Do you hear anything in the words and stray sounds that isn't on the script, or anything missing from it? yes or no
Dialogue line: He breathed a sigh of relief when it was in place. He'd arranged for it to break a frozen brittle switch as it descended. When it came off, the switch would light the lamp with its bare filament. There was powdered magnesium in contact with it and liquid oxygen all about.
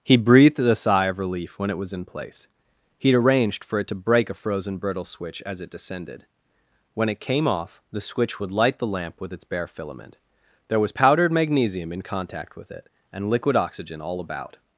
no